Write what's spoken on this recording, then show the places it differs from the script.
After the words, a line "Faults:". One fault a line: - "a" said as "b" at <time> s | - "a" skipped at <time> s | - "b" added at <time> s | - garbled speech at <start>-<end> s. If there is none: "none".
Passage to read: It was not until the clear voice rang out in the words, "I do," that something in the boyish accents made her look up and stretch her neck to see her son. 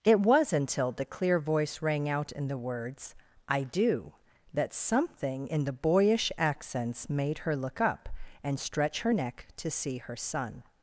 It was until the clear voice rang out in the words, "I do," that something in the boyish accents made her look up and stretch her neck to see her son.
Faults:
- "not" skipped at 0.5 s